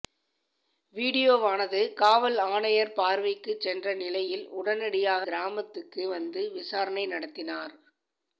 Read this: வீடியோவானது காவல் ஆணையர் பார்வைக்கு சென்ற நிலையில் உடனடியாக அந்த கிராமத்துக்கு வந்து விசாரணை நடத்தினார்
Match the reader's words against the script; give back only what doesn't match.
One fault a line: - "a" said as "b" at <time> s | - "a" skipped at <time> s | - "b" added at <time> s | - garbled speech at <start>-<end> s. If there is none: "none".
- "அந்த" skipped at 5.2 s